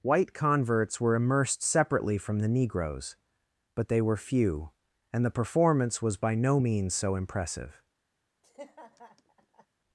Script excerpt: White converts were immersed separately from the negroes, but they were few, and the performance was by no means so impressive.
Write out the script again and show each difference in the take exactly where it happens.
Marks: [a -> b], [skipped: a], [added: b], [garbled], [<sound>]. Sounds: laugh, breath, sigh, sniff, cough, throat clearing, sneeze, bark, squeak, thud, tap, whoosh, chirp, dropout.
White converts were immersed separately from the negroes, but they were few, and the performance was by no means so impressive. [laugh]